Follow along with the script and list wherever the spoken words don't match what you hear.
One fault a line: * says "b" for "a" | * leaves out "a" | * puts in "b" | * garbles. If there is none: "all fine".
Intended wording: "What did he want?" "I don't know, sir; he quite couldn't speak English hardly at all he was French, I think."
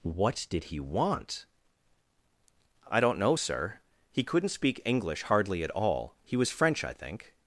* leaves out "quite"